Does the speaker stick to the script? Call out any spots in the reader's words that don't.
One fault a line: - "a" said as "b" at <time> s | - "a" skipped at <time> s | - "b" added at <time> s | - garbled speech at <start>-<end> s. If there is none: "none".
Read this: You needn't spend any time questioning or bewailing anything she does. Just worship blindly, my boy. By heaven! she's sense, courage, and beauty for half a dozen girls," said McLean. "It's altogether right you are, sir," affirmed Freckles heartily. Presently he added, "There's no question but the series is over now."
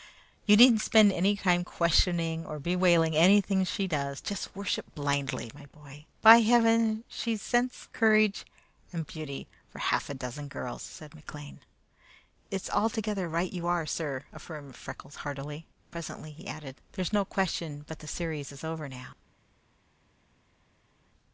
none